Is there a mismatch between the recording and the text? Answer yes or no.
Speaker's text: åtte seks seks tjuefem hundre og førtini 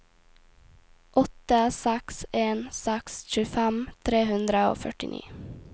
yes